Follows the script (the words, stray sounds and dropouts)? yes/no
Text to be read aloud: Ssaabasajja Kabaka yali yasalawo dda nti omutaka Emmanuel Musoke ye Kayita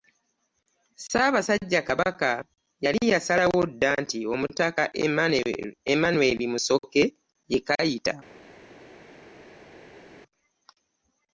yes